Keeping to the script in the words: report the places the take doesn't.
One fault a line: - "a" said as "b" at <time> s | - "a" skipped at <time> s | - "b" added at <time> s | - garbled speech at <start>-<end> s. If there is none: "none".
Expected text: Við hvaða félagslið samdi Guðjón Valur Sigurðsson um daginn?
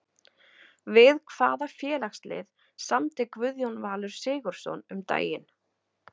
none